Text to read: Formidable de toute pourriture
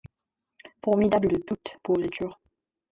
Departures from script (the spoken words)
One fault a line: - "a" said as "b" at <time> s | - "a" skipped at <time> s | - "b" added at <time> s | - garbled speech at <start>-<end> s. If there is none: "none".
none